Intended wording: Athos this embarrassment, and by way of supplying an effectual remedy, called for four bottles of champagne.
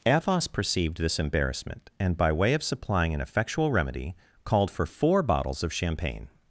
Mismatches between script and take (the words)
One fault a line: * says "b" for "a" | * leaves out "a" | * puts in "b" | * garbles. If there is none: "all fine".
* puts in "perceived"